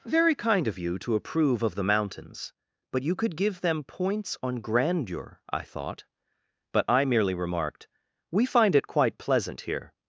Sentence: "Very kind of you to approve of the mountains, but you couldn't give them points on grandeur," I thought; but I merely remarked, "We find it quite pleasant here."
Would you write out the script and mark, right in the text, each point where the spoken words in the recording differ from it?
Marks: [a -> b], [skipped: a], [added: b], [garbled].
"Very kind of you to approve of the mountains, but you [couldn't -> could] give them points on grandeur," I thought; but I merely remarked, "We find it quite pleasant here."